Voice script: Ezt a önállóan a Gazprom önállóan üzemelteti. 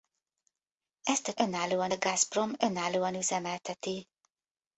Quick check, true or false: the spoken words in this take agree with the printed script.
true